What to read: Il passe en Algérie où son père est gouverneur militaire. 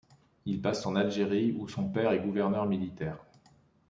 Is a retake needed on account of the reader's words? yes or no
no